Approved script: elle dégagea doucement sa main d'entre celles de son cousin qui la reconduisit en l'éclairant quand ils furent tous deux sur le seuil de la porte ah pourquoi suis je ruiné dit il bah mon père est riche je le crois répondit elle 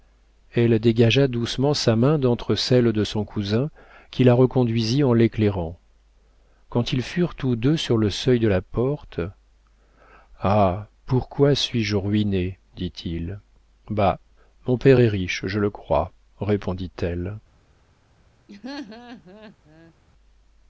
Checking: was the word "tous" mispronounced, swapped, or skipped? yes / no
no